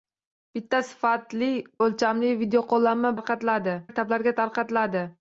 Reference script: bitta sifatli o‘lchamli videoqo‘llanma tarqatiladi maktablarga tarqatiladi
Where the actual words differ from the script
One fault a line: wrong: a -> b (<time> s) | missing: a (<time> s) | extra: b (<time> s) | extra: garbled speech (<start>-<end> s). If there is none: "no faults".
no faults